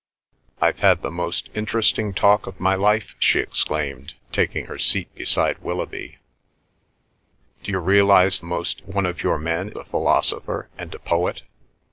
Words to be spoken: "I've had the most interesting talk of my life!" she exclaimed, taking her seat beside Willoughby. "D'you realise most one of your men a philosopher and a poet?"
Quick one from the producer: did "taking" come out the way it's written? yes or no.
yes